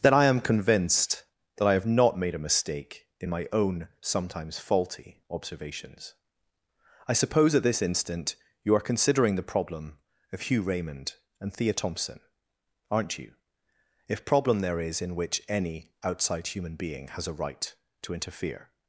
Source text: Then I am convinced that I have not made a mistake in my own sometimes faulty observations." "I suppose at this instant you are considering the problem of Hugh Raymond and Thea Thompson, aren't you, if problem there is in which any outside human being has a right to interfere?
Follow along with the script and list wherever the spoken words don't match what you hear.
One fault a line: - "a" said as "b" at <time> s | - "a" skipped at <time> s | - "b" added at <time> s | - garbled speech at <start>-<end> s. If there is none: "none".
none